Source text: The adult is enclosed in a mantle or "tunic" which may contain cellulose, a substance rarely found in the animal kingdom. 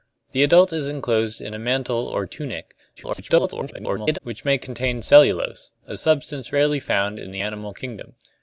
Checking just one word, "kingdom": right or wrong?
right